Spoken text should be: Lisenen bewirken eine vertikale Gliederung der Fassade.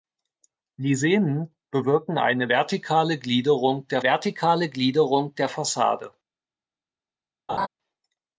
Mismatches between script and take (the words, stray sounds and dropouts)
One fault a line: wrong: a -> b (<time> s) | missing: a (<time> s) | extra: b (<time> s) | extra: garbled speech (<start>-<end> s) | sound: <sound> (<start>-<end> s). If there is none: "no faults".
extra: vertikale Gliederung der (4.0 s)
sound: laugh (7.5-7.7 s)